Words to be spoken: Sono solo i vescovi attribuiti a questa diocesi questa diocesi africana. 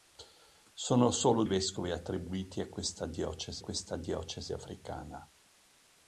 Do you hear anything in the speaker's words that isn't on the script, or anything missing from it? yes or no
no